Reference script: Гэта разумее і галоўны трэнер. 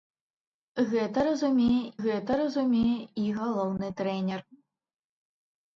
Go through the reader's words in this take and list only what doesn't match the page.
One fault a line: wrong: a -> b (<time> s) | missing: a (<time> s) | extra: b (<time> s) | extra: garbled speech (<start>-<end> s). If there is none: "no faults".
extra: гэта разумее (2.0 s)